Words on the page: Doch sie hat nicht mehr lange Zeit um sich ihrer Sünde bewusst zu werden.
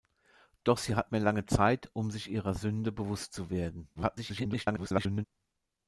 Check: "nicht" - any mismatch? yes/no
yes